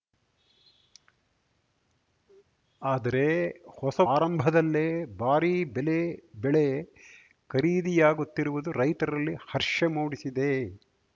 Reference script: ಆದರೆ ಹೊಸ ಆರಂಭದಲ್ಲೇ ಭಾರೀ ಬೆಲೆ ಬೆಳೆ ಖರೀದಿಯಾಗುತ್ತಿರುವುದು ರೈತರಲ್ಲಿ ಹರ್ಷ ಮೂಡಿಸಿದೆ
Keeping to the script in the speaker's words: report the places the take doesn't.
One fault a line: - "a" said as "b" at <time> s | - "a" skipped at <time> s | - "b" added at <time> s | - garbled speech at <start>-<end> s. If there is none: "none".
none